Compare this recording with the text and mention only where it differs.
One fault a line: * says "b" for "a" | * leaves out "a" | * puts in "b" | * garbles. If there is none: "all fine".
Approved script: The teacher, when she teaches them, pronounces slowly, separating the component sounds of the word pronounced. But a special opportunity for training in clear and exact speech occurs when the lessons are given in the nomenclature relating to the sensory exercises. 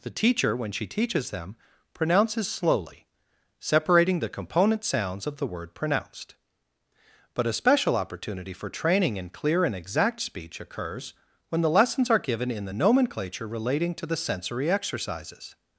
all fine